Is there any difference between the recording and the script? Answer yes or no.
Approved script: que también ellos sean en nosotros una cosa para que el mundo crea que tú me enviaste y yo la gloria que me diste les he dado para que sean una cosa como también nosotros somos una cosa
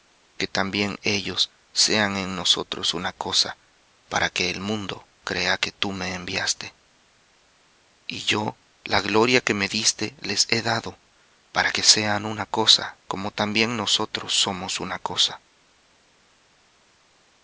no